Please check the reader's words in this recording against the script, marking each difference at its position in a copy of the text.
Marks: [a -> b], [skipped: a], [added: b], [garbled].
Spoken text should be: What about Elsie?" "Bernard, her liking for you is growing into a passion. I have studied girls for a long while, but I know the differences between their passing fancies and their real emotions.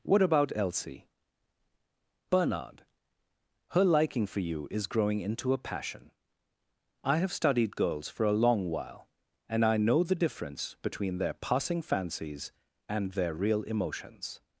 What about Elsie?" "Bernard, her liking for you is growing into a passion. I have studied girls for a long while, [but -> and] I know the [differences -> difference] between their passing fancies and their real emotions.